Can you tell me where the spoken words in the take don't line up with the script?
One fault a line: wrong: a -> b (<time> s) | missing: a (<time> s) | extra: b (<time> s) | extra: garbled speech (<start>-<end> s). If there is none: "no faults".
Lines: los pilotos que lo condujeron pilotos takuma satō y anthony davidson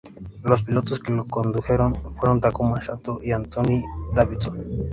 wrong: pilotos -> fueron (2.1 s)